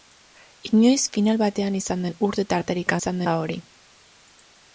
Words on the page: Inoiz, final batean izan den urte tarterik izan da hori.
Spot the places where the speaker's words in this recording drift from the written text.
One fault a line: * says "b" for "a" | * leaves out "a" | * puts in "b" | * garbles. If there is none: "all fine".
all fine